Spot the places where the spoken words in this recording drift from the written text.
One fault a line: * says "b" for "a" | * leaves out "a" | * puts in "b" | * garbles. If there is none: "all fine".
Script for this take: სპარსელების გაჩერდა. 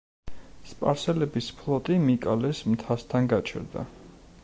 * puts in "ფლოტი მიკალეს მთასთან"